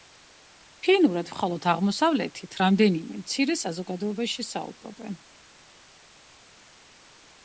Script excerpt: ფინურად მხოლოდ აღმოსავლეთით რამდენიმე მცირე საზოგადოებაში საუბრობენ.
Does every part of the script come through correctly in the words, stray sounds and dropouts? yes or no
yes